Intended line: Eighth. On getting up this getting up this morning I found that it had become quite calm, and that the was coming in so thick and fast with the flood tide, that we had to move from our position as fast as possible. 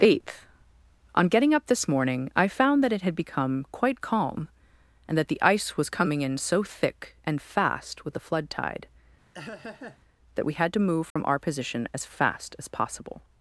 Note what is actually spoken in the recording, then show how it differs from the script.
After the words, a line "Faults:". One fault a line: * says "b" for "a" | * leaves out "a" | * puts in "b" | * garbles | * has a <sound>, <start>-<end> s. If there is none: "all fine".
Eighth. On getting up this morning I found that it had become quite calm, and that the ice was coming in so thick and fast with the flood tide, that we had to move from our position as fast as possible.
Faults:
* leaves out "getting up this"
* puts in "ice"
* has a laugh, 9.3-10.0 s
* has a dropout, 11.1-11.2 s